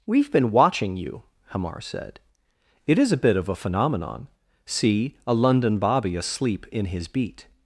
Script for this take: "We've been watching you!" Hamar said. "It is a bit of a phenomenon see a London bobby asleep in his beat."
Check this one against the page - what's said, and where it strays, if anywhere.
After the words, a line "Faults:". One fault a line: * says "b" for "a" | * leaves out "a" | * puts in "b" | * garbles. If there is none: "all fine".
"We've been watching you!" Hamar said. "It is a bit of a phenomenon see a London bobby asleep in his beat."
Faults:
all fine